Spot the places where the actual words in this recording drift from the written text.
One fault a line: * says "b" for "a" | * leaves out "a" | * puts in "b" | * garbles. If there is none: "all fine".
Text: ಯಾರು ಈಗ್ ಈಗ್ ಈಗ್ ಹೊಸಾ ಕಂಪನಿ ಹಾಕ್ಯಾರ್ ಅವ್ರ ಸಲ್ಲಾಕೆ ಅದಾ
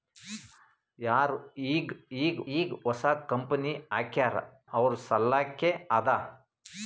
all fine